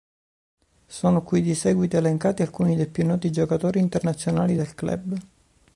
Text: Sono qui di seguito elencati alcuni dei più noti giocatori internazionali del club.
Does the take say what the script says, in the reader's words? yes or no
yes